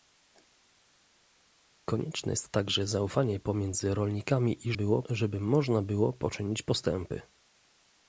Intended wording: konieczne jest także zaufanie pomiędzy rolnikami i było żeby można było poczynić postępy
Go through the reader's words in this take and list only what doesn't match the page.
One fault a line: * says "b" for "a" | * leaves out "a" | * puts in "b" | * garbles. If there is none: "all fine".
all fine